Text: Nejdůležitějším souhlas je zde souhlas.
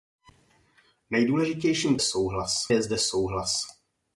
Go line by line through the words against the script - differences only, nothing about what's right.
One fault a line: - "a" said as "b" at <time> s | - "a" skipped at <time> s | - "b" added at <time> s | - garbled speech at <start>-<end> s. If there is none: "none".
none